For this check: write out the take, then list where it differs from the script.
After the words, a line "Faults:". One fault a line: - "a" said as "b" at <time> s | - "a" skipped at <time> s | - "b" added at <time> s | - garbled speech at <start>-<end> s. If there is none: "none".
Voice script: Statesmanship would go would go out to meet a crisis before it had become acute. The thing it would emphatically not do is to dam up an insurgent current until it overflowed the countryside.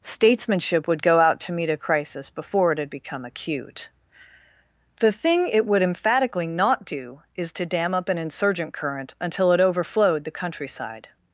Statesmanship would go out to meet a crisis before it had become acute. The thing it would emphatically not do is to dam up an insurgent current until it overflowed the countryside.
Faults:
- "would go" skipped at 1.2 s